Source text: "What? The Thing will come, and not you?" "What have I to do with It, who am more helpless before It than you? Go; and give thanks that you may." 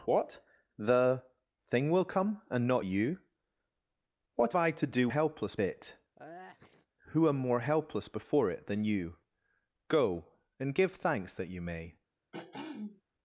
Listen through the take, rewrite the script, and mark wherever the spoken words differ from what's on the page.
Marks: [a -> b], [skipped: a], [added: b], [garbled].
"What? The Thing will come, and not you?" "What [skipped: have] I to do [with -> helpless] It, who am more helpless before It than you? Go; and give thanks that you may."